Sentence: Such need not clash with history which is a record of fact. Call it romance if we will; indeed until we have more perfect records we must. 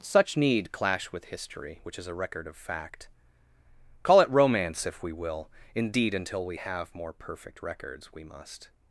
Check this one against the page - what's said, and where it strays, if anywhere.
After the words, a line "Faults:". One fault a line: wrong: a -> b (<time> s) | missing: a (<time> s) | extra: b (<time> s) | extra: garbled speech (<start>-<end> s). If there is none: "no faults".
Such need clash with history which is a record of fact. Call it romance if we will; indeed until we have more perfect records we must.
Faults:
missing: not (0.7 s)